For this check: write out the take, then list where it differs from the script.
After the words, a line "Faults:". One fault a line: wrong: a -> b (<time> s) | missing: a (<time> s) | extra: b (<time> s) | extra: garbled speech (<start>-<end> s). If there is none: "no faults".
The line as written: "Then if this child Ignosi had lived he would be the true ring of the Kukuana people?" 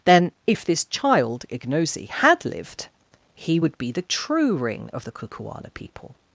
"Then if this child Ignosi had lived he would be the true ring of the Kukuana people?"
Faults:
no faults